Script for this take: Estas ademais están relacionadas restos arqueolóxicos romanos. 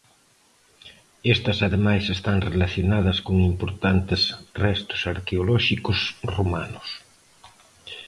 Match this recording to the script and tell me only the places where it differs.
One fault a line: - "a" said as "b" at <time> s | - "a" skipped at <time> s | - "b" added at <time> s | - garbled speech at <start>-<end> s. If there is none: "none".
- "con importantes" added at 3.3 s